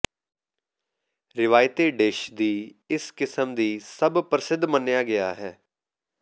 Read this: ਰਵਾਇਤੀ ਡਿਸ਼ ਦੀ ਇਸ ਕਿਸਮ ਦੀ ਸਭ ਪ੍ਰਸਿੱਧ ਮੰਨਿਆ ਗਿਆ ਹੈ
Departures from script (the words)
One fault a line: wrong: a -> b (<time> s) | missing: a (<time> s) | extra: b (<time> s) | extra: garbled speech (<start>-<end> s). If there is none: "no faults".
no faults